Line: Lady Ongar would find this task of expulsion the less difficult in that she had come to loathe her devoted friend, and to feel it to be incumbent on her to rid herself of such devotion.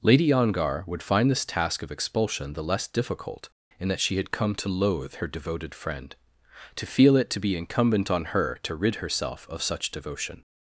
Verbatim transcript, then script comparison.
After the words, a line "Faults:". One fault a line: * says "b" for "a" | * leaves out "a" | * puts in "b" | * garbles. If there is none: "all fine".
Lady Ongar would find this task of expulsion the less difficult in that she had come to loathe her devoted friend, to feel it to be incumbent on her to rid herself of such devotion.
Faults:
* leaves out "and"